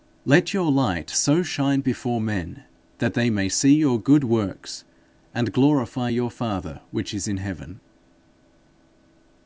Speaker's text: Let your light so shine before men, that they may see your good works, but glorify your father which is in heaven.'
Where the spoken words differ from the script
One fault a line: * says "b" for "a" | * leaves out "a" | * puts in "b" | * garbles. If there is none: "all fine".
* says "and" for "but"